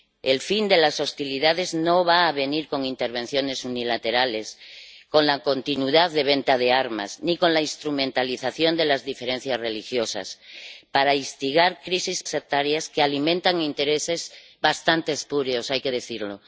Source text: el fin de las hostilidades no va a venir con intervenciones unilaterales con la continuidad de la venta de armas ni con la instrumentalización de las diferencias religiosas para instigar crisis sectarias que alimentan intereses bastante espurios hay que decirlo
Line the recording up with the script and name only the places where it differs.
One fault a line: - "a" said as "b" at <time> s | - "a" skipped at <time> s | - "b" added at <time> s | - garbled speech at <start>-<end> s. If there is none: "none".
none